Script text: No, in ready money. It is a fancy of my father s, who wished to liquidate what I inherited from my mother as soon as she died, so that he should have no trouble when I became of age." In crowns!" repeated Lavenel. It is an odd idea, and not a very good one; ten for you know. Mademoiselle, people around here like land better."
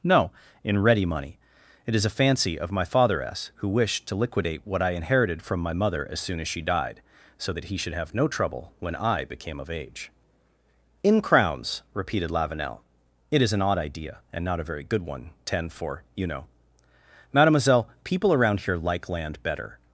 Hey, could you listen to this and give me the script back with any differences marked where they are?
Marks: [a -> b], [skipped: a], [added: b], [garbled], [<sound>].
No, in ready money. It is a fancy of my father s, who wished to liquidate what I inherited from my mother as soon as she died, so that he should have no trouble when I became of age." In crowns!" repeated Lavenel. It is an odd idea, and not a very good one; ten for you know. Mademoiselle, people around here like land better."